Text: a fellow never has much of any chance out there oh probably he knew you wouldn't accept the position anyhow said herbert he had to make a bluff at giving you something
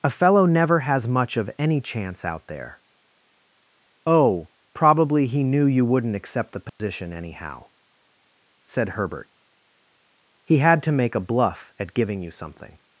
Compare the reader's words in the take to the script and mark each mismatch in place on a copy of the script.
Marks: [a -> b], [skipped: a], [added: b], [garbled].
a fellow never has much of any chance out there oh probably he knew you wouldn't accept the position anyhow said herbert he had to make a bluff at giving you something